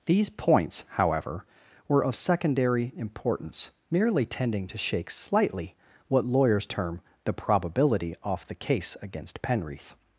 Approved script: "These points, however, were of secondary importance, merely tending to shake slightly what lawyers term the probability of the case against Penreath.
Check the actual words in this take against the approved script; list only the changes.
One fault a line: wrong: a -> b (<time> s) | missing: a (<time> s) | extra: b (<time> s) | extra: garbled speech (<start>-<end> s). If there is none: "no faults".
wrong: of -> off (8.2 s)